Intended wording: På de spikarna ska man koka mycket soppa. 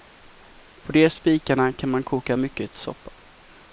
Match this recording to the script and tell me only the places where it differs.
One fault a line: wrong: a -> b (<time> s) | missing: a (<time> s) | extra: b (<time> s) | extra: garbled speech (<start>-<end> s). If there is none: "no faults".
wrong: ska -> kan (1.7 s)